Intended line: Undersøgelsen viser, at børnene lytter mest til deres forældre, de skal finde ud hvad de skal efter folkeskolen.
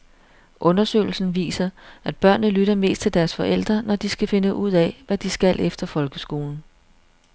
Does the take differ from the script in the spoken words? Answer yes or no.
yes